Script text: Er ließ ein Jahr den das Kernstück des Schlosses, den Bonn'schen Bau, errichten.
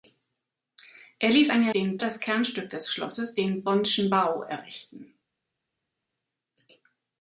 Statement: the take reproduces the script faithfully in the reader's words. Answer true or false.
true